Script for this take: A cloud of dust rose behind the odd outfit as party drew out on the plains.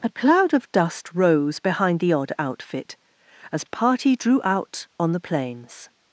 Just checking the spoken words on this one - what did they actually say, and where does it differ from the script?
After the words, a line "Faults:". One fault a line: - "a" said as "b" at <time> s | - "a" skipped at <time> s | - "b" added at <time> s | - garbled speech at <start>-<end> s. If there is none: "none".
A cloud of dust rose behind the odd outfit as party drew out on the plains.
Faults:
none